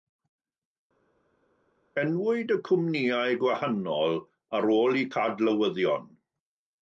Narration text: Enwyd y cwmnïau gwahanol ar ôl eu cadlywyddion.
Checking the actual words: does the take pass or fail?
pass